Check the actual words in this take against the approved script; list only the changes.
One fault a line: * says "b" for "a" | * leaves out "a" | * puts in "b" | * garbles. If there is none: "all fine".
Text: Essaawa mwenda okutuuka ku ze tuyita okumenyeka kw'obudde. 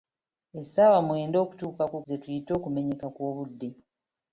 all fine